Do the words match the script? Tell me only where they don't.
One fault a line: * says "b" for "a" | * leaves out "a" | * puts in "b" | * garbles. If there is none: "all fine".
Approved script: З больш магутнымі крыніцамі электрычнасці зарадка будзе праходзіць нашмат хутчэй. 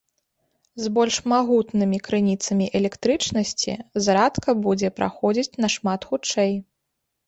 all fine